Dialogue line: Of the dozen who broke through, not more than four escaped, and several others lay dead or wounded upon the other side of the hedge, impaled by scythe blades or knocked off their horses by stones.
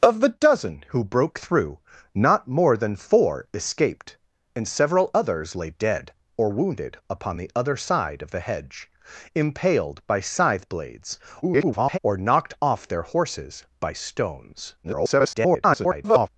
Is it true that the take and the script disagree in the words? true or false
true